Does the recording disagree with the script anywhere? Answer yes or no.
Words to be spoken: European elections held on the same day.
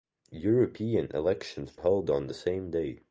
no